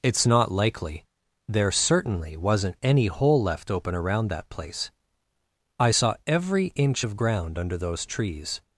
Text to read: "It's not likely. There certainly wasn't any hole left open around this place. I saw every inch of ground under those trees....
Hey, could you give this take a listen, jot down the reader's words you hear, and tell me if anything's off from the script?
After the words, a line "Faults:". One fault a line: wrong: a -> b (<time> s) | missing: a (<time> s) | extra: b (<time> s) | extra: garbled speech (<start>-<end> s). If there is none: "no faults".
"It's not likely. There certainly wasn't any hole left open around that place. I saw every inch of ground under those trees....
Faults:
wrong: this -> that (4.3 s)